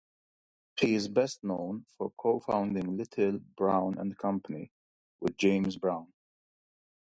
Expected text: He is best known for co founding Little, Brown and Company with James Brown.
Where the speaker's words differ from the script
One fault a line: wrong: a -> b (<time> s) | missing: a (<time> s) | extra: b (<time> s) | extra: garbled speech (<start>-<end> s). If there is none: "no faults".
no faults